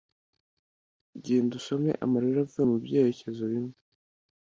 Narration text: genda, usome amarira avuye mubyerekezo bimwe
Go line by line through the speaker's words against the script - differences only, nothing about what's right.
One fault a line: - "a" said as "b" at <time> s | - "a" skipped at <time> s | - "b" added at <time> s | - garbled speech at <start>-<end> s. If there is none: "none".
none